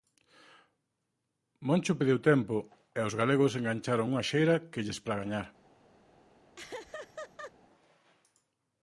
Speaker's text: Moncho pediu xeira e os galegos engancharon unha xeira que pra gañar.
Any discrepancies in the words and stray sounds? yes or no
yes